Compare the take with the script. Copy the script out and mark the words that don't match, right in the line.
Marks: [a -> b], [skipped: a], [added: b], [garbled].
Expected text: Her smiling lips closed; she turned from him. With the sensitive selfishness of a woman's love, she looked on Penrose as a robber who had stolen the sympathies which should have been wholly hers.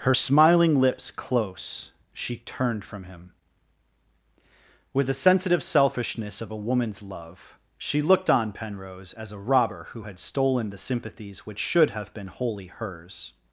Her smiling lips [closed; -> close] she turned from him. With the sensitive selfishness of a woman's love, she looked on Penrose as a robber who had stolen the sympathies which should have been wholly hers.